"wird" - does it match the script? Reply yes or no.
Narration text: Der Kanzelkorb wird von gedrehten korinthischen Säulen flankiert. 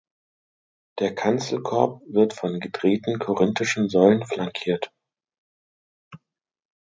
yes